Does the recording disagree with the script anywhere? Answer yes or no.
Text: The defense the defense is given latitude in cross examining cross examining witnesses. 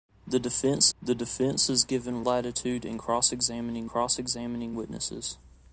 no